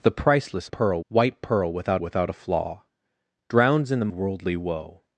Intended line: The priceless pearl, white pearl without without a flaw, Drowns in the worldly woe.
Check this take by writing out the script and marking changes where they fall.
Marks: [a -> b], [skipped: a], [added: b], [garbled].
The priceless pearl, white pearl without without a flaw, Drowns in the worldly woe.